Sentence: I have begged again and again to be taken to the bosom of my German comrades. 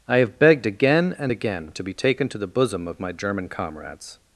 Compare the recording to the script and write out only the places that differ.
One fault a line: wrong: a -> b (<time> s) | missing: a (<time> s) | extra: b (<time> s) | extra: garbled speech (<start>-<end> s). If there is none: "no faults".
no faults